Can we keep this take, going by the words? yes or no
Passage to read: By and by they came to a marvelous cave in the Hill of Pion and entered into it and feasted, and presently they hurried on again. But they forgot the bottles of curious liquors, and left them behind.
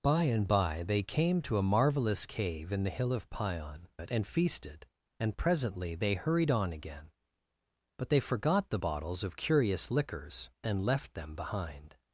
no